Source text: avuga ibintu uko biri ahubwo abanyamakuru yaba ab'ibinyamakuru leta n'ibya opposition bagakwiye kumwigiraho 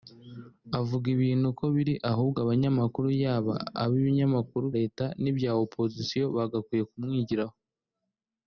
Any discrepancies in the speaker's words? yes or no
no